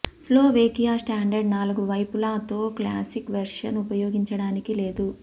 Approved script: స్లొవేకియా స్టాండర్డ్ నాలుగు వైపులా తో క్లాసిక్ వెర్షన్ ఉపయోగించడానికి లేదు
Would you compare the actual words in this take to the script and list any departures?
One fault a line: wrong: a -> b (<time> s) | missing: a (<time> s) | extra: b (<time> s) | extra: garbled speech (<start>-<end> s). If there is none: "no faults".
no faults